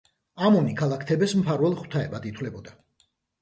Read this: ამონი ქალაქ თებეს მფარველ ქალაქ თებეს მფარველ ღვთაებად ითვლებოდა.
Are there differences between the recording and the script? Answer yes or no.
yes